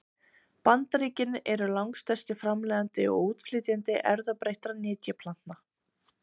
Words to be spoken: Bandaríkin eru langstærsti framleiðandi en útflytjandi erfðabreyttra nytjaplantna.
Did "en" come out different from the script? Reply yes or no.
yes